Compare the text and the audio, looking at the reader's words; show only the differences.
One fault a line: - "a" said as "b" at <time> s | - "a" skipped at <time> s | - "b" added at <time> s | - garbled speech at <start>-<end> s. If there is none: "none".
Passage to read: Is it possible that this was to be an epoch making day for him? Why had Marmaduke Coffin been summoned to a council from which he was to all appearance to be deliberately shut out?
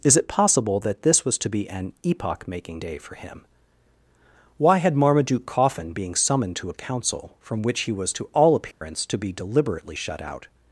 - "been" said as "being" at 5.9 s